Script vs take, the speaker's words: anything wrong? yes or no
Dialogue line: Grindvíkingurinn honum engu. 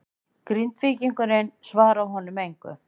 yes